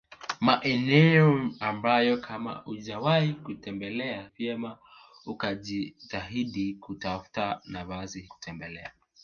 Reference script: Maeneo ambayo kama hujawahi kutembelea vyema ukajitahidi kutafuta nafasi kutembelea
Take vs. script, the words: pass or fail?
pass